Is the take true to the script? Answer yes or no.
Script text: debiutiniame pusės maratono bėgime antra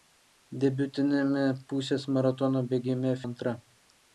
yes